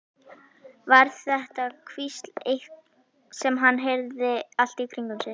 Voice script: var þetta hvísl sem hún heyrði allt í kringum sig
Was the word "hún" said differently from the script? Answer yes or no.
yes